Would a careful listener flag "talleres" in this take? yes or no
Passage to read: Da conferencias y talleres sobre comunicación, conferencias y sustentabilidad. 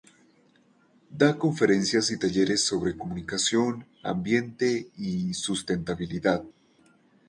no